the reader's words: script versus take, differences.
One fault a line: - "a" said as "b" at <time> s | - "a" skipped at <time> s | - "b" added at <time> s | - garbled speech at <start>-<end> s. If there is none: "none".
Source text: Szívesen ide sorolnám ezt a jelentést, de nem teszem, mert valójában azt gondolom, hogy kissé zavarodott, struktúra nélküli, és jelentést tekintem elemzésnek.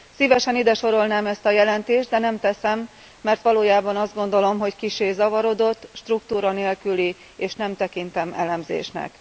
- "jelentést" said as "nem" at 7.5 s